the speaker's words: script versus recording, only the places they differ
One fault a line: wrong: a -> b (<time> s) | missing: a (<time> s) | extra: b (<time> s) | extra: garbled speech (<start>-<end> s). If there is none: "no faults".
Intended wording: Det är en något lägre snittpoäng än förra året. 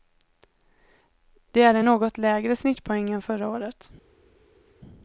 no faults